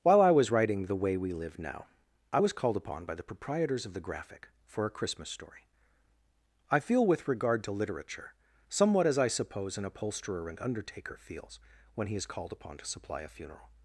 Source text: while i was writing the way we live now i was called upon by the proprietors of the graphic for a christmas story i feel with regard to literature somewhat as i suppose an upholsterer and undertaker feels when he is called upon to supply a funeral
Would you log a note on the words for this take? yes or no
no